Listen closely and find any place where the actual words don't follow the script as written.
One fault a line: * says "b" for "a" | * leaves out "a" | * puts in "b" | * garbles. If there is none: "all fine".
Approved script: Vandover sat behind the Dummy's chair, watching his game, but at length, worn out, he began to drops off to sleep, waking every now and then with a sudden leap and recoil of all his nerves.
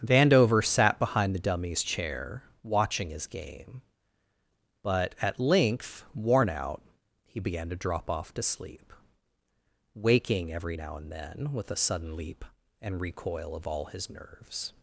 * says "drop" for "drops"